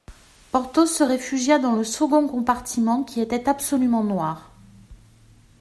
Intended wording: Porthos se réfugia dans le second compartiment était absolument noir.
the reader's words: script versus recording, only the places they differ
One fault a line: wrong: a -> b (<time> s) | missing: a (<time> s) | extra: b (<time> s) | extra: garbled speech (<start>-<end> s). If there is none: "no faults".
extra: qui (3.0 s)